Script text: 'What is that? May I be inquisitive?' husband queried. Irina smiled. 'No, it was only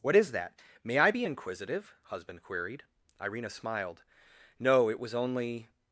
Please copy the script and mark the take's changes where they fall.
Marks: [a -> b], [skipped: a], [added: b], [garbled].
'What is that? May I be inquisitive?' husband queried. Irina smiled. 'No, it was only